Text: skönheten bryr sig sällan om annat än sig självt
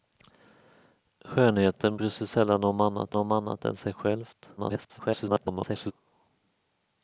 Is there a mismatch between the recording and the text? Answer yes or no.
yes